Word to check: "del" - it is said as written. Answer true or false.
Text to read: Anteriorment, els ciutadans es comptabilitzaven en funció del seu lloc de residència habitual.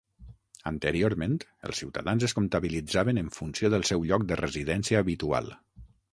true